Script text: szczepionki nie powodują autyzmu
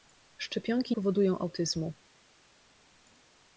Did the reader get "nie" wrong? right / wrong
wrong